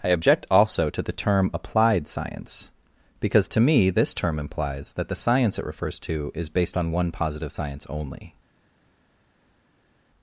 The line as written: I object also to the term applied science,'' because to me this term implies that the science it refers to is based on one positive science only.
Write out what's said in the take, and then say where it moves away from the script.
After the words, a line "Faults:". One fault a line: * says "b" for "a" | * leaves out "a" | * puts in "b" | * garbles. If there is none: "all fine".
I object also to the term applied science,'' because to me this term implies that the science it refers to is based on one positive science only.
Faults:
all fine